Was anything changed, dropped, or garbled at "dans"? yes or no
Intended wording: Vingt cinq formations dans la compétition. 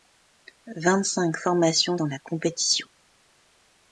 no